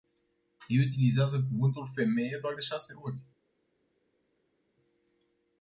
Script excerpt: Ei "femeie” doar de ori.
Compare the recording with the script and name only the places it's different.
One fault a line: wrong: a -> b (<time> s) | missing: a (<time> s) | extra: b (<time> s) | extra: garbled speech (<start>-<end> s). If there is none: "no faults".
extra: utilizează cuvântul (0.9 s)
extra: șase (2.6 s)